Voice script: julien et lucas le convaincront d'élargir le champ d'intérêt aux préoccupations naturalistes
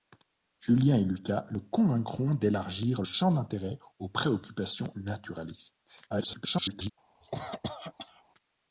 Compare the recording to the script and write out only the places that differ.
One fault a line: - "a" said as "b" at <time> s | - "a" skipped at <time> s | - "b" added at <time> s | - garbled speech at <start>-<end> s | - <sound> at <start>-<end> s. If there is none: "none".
- "le" skipped at 3.0 s
- garbled speech at 6.1-6.9 s
- cough at 7.2-8.2 s